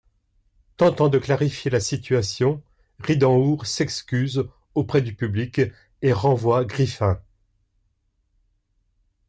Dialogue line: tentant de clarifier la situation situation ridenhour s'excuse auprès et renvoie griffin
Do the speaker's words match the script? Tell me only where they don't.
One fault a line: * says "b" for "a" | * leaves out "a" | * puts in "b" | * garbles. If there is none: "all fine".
* leaves out "situation"
* puts in "du public"